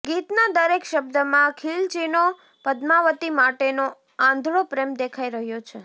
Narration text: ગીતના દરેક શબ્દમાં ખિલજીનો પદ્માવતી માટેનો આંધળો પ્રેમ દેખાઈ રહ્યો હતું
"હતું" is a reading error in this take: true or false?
true